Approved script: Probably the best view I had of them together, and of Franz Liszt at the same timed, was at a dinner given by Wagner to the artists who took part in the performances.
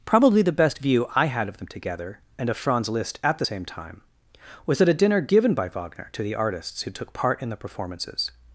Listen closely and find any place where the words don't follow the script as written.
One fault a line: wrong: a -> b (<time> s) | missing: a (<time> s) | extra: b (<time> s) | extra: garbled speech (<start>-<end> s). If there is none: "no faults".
wrong: timed -> time (3.6 s)